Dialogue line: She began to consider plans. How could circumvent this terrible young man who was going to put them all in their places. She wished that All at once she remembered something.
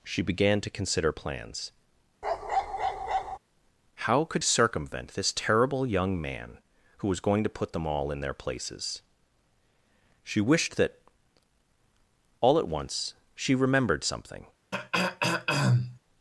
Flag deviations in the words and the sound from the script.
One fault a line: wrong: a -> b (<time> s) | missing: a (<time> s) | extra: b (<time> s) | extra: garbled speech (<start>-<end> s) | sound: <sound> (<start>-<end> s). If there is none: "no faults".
sound: bark (2.2-3.4 s)
sound: throat clearing (14.7-16.0 s)